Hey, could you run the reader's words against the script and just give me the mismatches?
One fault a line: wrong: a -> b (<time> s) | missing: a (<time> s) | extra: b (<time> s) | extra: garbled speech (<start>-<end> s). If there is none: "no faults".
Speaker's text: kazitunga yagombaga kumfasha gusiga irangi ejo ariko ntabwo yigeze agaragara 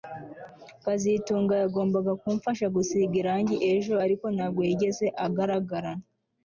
no faults